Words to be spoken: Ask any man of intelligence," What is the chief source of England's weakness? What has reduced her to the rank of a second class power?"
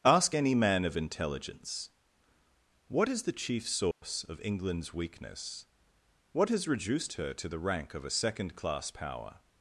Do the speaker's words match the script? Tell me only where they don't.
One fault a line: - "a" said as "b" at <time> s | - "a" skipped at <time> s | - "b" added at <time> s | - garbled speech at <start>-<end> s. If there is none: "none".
none